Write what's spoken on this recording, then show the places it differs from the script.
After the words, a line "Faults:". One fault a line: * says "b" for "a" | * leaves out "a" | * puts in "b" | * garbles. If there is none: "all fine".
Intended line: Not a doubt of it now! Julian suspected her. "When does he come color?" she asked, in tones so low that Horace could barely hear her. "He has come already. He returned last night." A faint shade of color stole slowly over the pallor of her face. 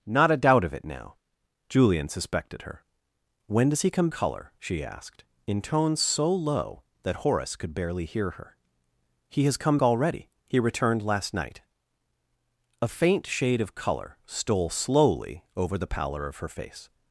Not a doubt of it now! Julian suspected her. "When does he come color?" she asked, in tones so low that Horace could barely hear her. "He has come already. He returned last night." A faint shade of color stole slowly over the pallor of her face.
Faults:
all fine